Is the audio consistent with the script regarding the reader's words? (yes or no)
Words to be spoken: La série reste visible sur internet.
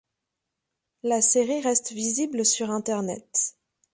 yes